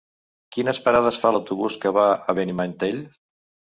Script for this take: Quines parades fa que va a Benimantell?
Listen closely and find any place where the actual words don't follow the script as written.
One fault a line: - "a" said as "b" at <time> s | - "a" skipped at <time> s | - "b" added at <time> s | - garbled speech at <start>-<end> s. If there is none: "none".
- "l'autobús" added at 1.3 s